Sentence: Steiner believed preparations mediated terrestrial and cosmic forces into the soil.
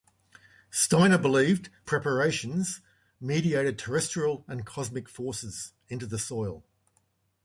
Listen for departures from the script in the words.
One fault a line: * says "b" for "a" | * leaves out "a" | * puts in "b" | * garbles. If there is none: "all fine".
all fine